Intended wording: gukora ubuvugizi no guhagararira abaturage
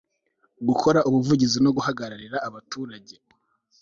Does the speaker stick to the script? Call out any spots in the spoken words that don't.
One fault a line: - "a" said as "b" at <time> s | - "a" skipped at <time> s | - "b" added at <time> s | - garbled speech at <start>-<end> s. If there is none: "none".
none